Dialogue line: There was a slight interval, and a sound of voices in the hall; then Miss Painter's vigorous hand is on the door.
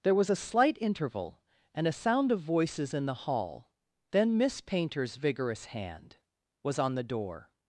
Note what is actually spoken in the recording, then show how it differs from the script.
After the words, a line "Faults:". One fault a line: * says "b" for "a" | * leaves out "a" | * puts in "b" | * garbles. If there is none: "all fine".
There was a slight interval, and a sound of voices in the hall; then Miss Painter's vigorous hand was on the door.
Faults:
* says "was" for "is"